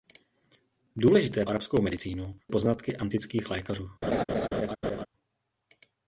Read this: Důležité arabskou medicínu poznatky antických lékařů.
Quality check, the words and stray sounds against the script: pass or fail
fail